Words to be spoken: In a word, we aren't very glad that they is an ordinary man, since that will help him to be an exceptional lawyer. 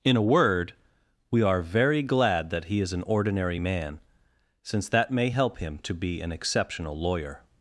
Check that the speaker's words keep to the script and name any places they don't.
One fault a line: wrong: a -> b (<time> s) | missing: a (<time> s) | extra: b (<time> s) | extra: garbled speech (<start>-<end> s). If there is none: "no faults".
wrong: aren't -> are (1.4 s)
wrong: they -> he (2.6 s)
wrong: will -> may (5.1 s)